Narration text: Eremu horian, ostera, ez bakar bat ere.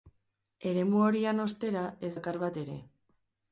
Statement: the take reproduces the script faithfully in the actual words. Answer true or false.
true